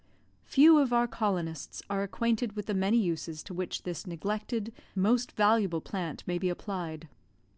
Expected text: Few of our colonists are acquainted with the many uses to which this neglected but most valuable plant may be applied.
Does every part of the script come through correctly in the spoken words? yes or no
no